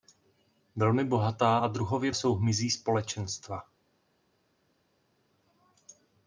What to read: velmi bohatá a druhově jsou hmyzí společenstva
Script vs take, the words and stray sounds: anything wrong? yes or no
no